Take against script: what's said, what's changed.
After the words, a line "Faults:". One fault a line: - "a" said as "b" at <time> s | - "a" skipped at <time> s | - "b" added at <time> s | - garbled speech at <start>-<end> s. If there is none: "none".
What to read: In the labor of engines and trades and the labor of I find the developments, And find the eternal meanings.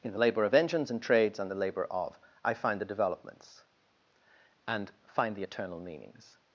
In the labor of engines and trades and the labor of I find the developments, And find the eternal meanings.
Faults:
none